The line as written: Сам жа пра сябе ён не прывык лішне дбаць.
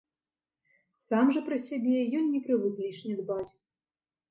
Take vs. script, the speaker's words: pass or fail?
pass